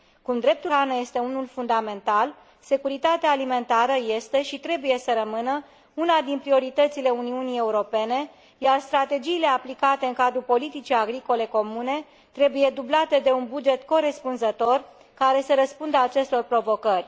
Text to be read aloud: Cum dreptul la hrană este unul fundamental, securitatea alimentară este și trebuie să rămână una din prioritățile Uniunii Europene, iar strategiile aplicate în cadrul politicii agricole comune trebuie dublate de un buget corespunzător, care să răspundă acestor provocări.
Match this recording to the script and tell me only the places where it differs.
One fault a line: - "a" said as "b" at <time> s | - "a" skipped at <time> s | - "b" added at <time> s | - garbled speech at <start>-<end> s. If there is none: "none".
- "la" skipped at 0.7 s